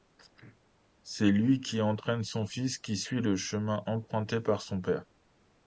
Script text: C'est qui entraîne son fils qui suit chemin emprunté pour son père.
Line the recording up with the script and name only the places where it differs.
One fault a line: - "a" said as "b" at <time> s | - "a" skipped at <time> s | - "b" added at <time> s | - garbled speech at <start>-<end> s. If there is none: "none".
- "lui" added at 1.3 s
- "le" added at 3.2 s
- "pour" said as "par" at 4.4 s